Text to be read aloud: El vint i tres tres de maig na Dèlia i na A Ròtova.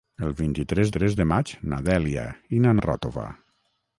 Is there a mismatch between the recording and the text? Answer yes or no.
no